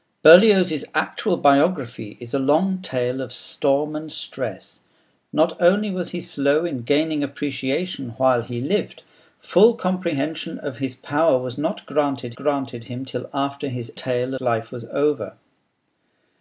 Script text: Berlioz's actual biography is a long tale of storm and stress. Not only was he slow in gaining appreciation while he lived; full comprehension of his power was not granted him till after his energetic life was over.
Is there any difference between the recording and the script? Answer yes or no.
yes